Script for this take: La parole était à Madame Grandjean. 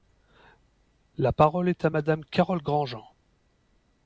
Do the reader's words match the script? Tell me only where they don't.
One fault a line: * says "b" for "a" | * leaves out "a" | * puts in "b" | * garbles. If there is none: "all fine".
* says "est" for "était"
* puts in "Carole"